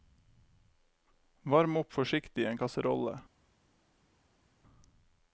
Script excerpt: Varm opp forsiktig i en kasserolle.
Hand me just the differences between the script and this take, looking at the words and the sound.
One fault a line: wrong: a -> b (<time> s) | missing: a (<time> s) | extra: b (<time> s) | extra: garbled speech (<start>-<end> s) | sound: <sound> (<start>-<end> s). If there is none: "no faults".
no faults